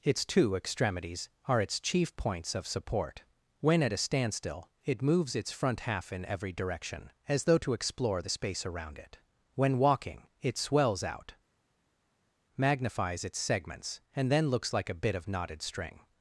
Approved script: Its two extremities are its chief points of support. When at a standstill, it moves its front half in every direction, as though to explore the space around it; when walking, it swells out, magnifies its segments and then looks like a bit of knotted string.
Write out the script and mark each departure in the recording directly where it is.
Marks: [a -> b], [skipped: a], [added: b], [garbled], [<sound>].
Its two extremities are its chief points of support. When at a standstill, it moves its front half in every direction, as though to explore the space around it; when walking, it swells out, magnifies its segments and then looks like a bit of knotted string.